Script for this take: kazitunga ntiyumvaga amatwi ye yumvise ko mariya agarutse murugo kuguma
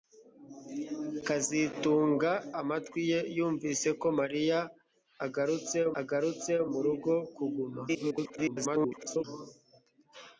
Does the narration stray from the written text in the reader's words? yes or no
yes